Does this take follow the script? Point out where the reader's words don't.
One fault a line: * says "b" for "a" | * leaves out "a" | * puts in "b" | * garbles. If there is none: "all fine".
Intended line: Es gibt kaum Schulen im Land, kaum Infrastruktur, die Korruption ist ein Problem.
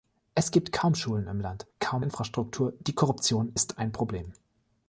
all fine